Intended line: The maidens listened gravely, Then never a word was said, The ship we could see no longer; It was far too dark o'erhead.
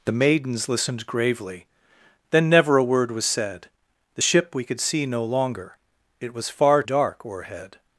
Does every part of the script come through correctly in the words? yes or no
no